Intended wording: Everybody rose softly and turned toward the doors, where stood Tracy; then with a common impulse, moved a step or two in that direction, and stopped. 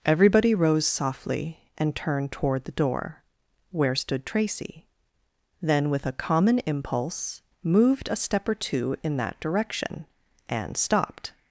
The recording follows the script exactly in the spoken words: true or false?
false